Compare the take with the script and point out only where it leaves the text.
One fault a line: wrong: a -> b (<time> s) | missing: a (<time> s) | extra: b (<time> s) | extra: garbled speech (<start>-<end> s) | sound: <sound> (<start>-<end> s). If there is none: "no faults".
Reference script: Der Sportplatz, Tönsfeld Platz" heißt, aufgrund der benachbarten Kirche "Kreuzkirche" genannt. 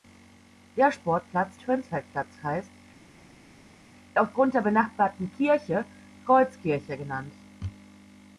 no faults